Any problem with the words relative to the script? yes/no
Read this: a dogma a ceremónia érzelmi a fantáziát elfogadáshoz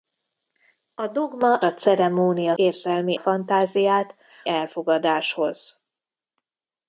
no